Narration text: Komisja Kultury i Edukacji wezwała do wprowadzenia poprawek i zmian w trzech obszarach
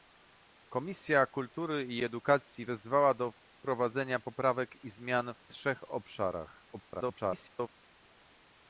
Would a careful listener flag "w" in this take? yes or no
no